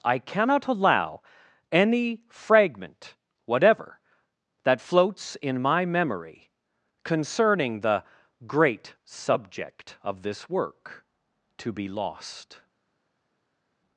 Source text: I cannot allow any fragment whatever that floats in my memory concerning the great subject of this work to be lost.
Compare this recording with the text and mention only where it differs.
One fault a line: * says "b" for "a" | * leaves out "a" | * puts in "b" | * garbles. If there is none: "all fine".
all fine